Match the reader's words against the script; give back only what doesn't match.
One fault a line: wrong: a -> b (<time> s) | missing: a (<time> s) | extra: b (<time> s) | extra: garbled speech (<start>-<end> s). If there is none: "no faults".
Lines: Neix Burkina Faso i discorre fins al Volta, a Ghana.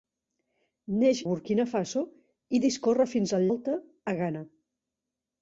no faults